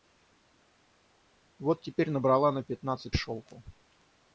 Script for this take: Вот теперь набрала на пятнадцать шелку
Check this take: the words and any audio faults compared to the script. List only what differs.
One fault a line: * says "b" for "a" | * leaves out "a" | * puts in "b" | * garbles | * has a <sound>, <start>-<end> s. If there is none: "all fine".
all fine